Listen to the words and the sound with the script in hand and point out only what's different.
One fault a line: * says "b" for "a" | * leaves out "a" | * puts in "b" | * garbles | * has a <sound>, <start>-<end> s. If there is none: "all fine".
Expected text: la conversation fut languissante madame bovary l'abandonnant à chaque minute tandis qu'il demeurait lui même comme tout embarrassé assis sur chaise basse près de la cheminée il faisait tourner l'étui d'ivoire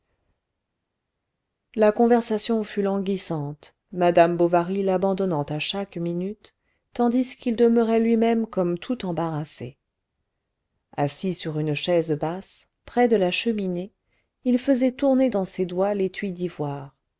* puts in "une"
* puts in "dans ses doigts"